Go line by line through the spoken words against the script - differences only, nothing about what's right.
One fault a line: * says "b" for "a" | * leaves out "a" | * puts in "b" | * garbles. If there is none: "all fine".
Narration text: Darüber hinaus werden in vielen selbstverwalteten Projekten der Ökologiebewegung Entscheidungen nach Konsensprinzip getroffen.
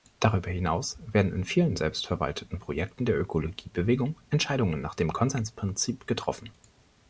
* puts in "dem"